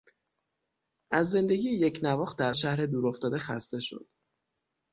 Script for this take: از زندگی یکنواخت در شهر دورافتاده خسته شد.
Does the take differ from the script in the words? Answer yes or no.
no